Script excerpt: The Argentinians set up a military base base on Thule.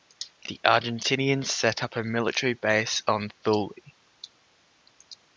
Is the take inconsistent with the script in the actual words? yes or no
yes